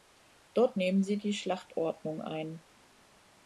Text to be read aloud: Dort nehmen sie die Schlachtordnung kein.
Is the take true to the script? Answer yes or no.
no